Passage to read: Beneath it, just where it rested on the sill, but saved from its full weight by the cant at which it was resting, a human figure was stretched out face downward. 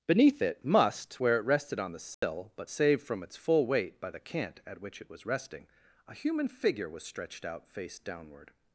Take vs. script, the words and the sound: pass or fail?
fail